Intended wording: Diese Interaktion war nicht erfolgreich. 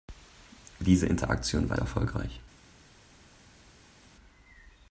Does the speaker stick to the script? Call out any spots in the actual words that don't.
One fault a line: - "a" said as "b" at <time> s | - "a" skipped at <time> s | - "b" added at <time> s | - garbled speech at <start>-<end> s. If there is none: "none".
- "nicht" skipped at 1.8 s